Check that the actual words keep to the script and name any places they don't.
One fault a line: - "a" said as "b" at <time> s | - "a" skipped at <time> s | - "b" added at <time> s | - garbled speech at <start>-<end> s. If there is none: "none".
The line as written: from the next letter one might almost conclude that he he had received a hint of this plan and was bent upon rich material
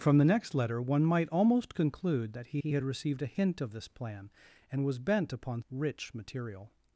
none